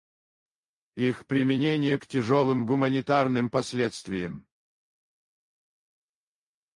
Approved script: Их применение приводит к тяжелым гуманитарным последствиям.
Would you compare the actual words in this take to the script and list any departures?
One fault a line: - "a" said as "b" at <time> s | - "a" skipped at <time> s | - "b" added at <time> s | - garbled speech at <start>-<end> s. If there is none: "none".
- "приводит" skipped at 2.0 s